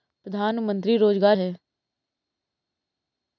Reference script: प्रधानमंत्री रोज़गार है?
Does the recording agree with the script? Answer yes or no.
yes